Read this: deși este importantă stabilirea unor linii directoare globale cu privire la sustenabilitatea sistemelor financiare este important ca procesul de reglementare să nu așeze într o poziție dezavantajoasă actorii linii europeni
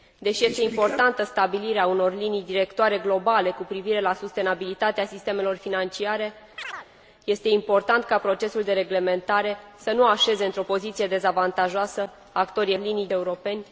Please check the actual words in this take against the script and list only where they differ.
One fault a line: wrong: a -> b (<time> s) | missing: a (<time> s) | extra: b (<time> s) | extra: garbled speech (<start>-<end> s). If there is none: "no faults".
no faults